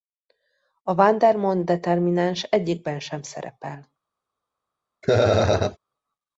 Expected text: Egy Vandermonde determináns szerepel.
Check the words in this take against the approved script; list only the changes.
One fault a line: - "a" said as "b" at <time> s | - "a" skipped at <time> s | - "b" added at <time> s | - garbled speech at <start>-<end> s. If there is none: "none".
- "Egy" said as "A" at 0.8 s
- "egyikben sem" added at 2.4 s